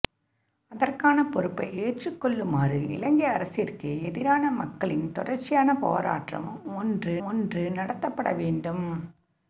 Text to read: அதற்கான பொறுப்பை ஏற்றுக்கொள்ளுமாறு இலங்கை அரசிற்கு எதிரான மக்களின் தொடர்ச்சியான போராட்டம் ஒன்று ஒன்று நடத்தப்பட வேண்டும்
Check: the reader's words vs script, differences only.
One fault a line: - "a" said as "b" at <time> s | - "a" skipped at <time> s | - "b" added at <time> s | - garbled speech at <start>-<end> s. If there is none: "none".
none